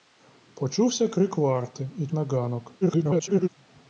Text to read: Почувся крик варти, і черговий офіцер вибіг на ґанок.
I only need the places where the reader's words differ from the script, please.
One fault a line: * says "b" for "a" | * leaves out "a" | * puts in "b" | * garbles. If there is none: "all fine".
* leaves out "черговий офіцер вибіг"
* garbles